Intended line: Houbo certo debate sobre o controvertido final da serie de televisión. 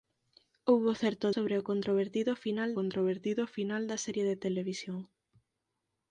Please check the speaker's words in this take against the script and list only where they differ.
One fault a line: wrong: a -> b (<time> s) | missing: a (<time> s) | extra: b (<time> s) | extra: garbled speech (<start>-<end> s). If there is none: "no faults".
missing: debate (1.3 s)
extra: controvertido final (2.8 s)